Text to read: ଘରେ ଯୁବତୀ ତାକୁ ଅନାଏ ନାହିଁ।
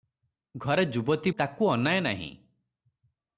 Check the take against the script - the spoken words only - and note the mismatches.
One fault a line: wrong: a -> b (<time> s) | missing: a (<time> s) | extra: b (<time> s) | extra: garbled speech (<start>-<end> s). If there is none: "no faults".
no faults